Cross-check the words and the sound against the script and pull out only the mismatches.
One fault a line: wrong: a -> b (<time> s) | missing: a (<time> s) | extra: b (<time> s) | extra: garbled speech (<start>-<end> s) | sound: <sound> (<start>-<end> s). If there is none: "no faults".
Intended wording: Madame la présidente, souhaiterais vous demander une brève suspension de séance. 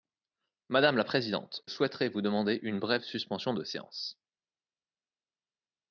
no faults